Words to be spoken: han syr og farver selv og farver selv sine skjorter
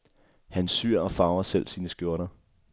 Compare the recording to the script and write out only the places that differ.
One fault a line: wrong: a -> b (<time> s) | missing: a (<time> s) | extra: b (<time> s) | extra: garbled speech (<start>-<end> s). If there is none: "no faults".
missing: og farver selv (1.7 s)